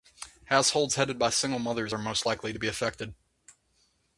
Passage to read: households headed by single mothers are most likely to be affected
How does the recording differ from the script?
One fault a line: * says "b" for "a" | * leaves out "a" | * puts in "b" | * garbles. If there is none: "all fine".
all fine